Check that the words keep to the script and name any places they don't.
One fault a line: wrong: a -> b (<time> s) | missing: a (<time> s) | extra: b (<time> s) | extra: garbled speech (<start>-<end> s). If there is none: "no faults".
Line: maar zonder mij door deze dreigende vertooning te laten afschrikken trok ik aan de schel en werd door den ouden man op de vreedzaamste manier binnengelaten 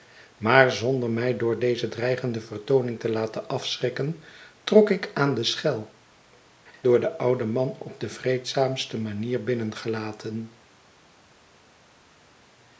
missing: en werd (5.9 s)